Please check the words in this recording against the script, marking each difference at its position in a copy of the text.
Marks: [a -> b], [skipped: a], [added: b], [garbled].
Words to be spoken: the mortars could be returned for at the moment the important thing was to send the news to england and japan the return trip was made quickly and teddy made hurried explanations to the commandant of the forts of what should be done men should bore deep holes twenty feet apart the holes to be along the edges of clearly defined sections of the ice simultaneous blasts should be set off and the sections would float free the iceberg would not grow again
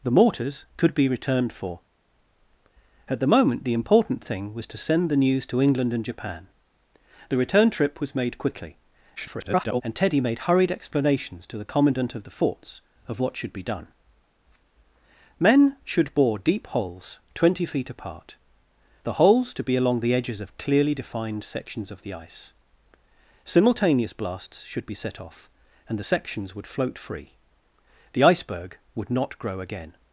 the mortars could be returned for at the moment the important thing was to send the news to england and japan the return trip was made quickly [garbled] and teddy made hurried explanations to the commandant of the forts of what should be done men should bore deep holes twenty feet apart the holes to be along the edges of clearly defined sections of the ice simultaneous blasts should be set off and the sections would float free the iceberg would not grow again